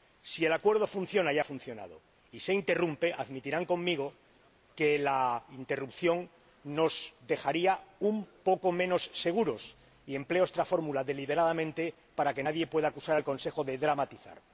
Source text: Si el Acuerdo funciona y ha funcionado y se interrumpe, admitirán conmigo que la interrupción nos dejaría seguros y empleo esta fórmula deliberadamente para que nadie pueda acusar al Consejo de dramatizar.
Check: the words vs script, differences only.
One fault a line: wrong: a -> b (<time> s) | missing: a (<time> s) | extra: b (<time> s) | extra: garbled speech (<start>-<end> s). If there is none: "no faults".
extra: un poco menos (8.0 s)